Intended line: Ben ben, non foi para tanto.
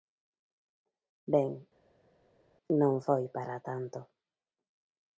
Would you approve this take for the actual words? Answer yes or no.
no